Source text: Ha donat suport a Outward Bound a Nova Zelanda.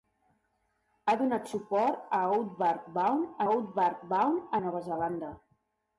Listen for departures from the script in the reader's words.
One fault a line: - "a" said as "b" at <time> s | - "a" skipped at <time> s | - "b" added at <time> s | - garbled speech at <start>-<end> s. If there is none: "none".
- "Outward Bound" added at 3.5 s